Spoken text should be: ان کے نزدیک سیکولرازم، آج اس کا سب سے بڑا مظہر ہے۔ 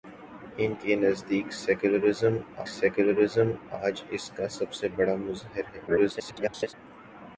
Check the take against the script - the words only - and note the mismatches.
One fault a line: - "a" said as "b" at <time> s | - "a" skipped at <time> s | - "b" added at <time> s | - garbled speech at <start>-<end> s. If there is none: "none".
- "سیکولرازم" added at 2.7 s
- garbled speech at 5.9-6.7 s